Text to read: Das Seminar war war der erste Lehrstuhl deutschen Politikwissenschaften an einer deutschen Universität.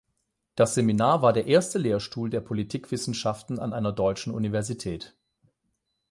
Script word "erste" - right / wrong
right